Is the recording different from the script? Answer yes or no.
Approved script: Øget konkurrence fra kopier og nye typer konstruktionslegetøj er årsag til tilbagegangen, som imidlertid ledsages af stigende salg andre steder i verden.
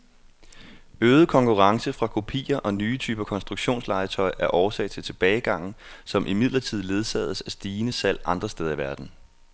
no